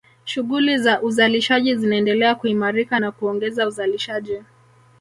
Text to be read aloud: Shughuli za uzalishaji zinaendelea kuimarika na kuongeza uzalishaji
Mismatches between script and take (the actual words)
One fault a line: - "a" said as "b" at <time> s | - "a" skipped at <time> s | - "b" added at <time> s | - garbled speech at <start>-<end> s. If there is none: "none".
none